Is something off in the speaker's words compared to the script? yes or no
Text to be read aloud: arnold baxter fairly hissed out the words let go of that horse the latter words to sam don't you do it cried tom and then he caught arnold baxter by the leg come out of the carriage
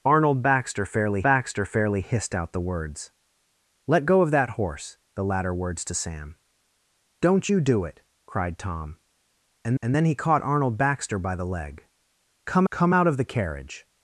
yes